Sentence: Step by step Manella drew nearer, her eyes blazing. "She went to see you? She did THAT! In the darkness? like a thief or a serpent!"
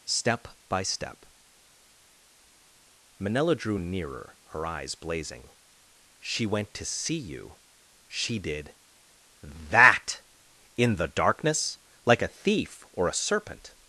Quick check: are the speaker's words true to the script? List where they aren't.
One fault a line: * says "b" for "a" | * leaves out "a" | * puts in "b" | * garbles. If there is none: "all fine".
all fine